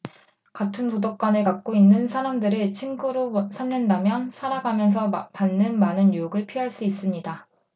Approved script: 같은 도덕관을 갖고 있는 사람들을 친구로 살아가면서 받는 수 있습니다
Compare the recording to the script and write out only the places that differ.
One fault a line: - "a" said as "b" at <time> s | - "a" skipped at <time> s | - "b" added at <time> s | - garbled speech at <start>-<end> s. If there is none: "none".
- "삼는다면" added at 3.5 s
- "많은 유혹을 피할" added at 5.8 s